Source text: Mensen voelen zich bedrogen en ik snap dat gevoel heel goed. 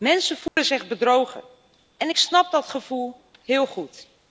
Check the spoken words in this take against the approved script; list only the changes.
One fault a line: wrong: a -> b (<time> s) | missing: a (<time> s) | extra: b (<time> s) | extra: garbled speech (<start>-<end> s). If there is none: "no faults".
no faults